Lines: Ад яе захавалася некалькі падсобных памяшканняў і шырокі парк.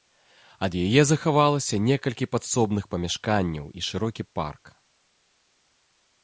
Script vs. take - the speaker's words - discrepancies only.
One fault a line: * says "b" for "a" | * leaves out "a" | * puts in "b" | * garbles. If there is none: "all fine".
all fine